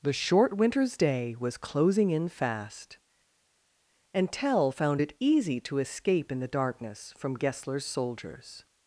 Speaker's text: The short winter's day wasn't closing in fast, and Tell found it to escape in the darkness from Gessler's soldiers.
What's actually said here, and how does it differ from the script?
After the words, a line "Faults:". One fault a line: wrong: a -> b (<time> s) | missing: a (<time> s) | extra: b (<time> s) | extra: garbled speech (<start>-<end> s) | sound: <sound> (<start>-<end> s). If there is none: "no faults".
The short winter's day was closing in fast, and Tell found it easy to escape in the darkness from Gessler's soldiers.
Faults:
wrong: wasn't -> was (1.4 s)
extra: easy (5.2 s)